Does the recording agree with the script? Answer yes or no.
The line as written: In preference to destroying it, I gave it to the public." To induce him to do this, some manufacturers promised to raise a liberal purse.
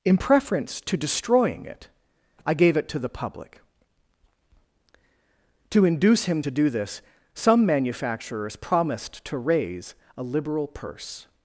yes